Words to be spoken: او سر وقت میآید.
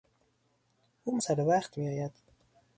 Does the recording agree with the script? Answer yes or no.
yes